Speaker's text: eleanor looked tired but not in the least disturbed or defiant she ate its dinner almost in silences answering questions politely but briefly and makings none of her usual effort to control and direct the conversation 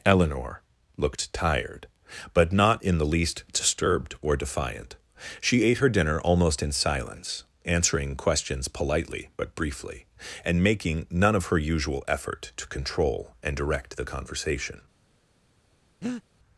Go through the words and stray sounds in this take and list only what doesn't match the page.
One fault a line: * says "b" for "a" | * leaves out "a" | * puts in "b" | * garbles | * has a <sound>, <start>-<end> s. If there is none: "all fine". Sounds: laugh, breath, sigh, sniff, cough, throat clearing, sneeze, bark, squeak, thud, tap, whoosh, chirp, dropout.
* says "her" for "its"
* says "silence" for "silences"
* says "making" for "makings"
* has a breath, 16.0-16.2 s